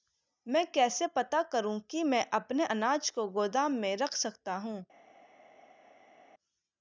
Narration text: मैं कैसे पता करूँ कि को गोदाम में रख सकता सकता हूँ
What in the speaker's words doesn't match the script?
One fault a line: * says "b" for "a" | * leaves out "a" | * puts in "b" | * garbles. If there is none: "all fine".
* puts in "मैं अपने अनाज"
* leaves out "सकता"